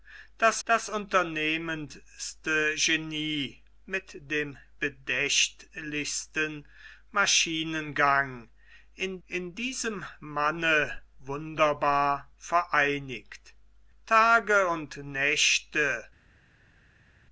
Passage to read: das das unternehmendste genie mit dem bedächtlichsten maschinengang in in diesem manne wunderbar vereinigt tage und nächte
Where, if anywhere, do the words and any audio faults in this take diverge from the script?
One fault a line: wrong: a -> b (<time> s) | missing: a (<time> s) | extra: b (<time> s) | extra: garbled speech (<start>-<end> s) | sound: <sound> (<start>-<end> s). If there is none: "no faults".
no faults